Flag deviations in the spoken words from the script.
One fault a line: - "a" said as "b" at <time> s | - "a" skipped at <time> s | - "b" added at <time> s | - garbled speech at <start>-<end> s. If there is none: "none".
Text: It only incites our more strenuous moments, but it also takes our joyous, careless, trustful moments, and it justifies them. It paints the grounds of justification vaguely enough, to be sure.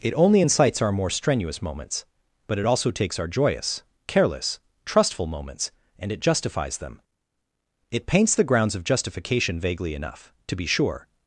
none